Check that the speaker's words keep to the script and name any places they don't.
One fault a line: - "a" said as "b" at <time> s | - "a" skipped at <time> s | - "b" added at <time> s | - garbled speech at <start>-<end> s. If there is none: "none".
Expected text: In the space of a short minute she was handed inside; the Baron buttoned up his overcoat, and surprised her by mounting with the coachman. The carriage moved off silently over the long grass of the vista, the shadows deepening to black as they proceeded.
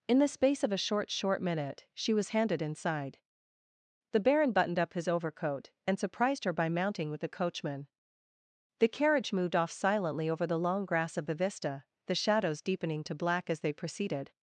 - "short" added at 1.1 s